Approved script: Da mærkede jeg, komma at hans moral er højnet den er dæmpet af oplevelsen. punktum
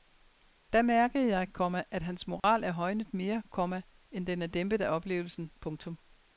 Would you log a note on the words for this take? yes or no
yes